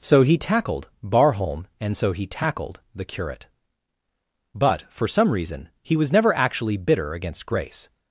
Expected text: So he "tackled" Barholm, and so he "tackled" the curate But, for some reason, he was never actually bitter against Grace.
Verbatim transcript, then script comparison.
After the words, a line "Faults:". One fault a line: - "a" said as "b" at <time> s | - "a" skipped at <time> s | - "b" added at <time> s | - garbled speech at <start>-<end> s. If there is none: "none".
So he "tackled" Barholm, and so he "tackled" the curate But, for some reason, he was never actually bitter against Grace.
Faults:
none